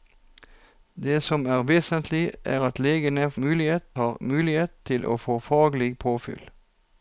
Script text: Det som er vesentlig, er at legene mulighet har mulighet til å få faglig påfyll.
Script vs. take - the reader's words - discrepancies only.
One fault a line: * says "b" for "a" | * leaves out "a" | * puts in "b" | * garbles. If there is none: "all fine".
all fine